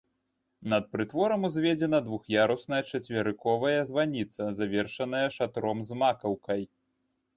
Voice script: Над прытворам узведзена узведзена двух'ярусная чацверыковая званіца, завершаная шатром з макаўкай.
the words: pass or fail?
fail